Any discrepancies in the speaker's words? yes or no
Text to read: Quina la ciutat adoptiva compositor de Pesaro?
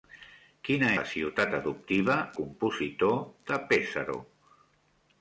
no